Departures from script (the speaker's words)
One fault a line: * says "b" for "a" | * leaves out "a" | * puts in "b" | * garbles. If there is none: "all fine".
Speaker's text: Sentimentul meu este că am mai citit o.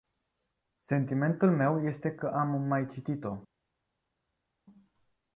all fine